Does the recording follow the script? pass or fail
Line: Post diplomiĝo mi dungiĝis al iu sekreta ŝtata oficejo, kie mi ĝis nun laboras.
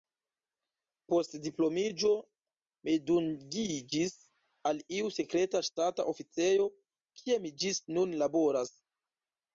pass